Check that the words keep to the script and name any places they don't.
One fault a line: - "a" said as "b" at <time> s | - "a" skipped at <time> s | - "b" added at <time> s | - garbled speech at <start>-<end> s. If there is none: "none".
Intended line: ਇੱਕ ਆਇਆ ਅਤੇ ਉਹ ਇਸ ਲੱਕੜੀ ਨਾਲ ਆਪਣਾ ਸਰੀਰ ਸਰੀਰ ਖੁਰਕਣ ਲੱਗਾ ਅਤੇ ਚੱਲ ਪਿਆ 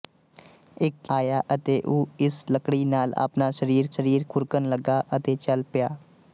none